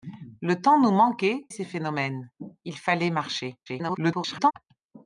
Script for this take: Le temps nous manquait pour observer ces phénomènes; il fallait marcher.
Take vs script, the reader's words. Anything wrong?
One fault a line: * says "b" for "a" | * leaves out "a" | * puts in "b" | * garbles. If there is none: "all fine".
* leaves out "pour observer"
* garbles